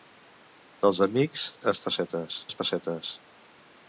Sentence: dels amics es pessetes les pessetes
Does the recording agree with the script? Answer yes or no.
yes